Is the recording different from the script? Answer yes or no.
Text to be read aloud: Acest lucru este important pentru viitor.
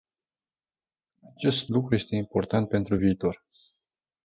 no